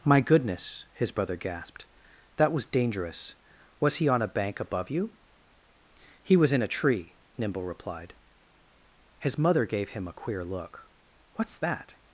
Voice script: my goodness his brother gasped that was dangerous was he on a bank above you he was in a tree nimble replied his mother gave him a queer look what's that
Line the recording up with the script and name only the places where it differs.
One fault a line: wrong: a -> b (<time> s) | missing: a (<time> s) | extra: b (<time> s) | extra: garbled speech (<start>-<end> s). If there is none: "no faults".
no faults